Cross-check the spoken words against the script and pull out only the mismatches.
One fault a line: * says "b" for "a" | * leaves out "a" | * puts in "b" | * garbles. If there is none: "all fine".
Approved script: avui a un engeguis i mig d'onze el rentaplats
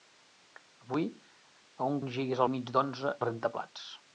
all fine